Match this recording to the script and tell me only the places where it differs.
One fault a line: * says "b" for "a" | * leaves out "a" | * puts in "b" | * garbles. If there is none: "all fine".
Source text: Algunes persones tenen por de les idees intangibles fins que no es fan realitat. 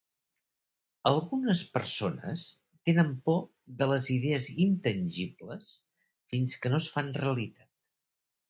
all fine